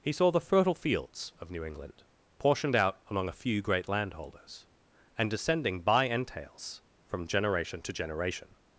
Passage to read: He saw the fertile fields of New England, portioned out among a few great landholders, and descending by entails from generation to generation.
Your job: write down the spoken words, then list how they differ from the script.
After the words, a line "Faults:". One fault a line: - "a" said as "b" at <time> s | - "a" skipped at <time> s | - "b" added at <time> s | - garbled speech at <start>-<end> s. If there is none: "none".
He saw the fertile fields of New England, portioned out among a few great landholders, and descending by entails from generation to generation.
Faults:
none